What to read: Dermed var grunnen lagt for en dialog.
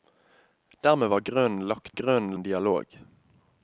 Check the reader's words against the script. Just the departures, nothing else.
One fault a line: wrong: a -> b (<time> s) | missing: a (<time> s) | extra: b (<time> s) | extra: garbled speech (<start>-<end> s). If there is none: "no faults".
wrong: for -> grunnen (1.9 s)